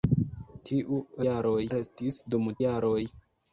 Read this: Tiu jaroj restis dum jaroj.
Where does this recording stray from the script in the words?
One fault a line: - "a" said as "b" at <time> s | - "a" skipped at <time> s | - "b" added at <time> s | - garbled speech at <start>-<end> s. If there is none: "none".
none